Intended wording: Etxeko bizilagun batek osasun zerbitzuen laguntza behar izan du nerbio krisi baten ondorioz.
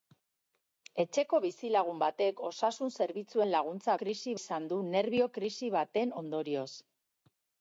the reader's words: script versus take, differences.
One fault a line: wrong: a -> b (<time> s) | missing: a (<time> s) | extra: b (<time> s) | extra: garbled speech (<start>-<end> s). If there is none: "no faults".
wrong: behar -> krisi (4.0 s)